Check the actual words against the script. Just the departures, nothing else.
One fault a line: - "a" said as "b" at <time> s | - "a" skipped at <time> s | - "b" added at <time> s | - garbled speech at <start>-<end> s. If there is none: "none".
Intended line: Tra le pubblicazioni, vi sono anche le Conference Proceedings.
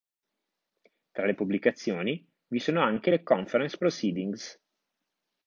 none